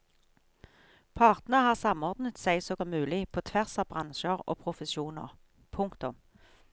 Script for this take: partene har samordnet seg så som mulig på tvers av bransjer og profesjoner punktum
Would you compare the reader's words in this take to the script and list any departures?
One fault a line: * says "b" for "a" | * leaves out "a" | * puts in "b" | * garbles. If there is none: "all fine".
all fine